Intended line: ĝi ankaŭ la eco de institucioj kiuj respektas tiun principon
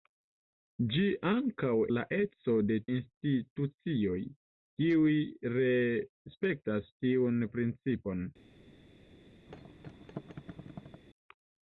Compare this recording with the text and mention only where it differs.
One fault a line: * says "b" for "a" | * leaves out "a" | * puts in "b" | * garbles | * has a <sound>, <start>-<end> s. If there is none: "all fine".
* has a thud, 9.5-11.0 s